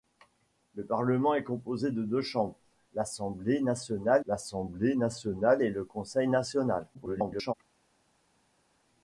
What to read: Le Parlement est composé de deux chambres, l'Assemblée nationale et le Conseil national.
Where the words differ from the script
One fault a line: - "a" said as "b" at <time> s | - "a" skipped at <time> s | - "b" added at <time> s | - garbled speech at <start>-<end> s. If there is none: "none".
- "l'Assemblée nationale" added at 4.3 s
- garbled speech at 6.9-7.5 s